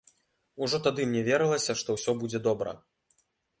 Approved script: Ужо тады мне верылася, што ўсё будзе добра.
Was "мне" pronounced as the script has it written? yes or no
yes